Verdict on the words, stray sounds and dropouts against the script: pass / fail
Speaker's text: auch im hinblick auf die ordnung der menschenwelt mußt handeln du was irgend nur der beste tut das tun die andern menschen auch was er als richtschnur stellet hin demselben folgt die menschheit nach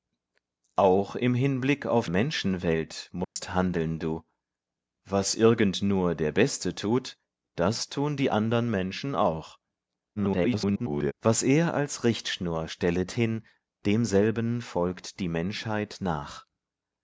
fail